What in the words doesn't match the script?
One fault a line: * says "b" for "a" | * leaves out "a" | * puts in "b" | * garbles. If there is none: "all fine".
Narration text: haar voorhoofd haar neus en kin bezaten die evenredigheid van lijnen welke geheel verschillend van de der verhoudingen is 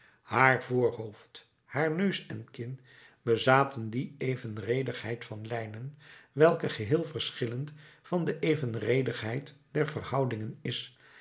* puts in "evenredigheid"